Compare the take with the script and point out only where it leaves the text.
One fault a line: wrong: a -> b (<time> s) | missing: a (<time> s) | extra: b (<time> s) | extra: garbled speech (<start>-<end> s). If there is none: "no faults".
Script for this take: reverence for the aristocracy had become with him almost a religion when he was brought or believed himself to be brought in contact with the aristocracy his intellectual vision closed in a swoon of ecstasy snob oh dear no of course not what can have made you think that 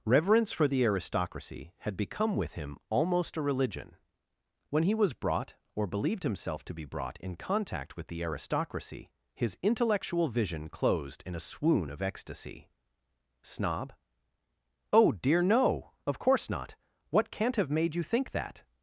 wrong: can -> can't (17.3 s)